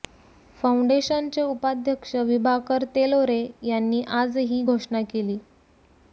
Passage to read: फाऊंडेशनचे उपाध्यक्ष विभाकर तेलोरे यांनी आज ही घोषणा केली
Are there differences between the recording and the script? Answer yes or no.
no